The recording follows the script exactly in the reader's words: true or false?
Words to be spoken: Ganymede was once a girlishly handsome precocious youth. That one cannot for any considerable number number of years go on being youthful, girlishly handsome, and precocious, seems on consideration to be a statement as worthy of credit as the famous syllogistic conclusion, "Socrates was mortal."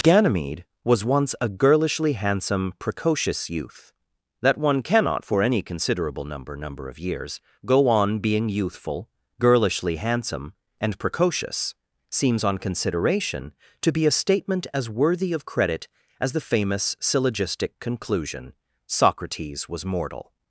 true